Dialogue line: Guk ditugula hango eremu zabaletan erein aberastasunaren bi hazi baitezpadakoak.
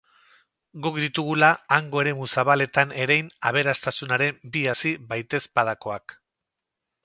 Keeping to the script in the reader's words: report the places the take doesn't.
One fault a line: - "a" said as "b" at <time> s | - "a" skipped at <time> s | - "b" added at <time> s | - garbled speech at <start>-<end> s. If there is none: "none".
none